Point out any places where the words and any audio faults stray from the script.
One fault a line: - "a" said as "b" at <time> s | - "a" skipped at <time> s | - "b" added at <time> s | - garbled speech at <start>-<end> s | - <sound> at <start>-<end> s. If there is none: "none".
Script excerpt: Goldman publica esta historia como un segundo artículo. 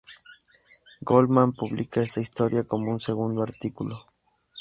none